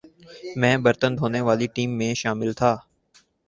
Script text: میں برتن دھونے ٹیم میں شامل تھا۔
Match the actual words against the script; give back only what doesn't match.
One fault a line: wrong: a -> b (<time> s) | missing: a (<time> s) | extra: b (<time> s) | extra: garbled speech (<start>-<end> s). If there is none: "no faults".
extra: والی (1.5 s)